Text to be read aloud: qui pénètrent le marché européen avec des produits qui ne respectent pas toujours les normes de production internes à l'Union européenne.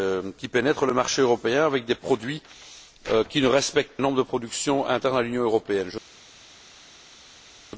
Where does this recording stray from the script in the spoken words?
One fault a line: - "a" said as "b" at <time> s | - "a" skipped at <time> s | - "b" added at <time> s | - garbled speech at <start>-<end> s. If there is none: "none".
- "pas toujours les" skipped at 4.0 s